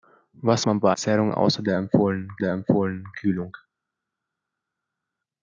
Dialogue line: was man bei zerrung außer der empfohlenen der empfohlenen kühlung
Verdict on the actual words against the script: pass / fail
pass